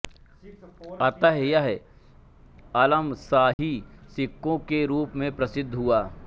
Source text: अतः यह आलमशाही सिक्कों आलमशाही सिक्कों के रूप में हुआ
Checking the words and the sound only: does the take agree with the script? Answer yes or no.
no